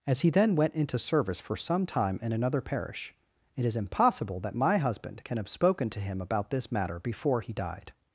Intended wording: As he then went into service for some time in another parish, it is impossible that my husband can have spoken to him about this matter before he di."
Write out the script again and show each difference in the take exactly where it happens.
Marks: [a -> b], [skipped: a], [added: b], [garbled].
As he then went into service for some time in another parish, it is impossible that my husband can have spoken to him about this matter before he [di." -> died]